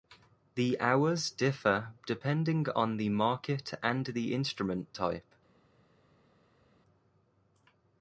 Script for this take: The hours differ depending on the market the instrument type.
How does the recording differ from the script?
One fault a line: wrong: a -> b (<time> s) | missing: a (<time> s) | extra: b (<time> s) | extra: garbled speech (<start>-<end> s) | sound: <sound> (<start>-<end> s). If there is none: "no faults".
extra: and (3.8 s)